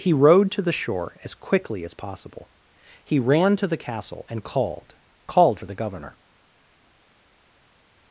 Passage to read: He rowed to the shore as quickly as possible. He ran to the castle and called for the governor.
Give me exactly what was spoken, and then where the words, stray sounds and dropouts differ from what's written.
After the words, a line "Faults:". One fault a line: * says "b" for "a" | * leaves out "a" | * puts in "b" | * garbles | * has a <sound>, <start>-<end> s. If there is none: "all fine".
He rowed to the shore as quickly as possible. He ran to the castle and called called for the governor.
Faults:
* puts in "called"